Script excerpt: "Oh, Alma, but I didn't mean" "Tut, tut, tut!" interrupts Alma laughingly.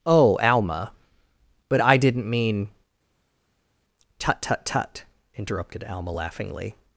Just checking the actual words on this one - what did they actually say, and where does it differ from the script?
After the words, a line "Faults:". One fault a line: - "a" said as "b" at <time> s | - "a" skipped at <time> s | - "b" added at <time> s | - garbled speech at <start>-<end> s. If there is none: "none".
"Oh, Alma, but I didn't mean" "Tut, tut, tut!" interrupted Alma laughingly.
Faults:
- "interrupts" said as "interrupted" at 5.3 s